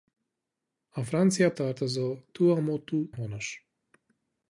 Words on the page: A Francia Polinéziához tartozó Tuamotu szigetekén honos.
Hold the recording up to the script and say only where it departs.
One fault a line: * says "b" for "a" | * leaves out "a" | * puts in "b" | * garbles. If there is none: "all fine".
* leaves out "Polinéziához"
* leaves out "szigetekén"